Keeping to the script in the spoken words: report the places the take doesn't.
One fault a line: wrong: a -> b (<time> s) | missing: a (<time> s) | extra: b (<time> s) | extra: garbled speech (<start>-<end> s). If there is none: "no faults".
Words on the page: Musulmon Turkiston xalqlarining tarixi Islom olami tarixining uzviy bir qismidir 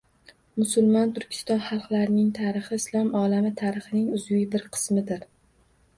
no faults